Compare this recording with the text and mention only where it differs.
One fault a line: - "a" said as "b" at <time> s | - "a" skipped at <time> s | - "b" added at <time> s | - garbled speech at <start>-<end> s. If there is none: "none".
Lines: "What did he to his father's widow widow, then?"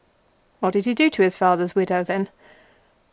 - "do" added at 0.9 s
- "widow" skipped at 2.0 s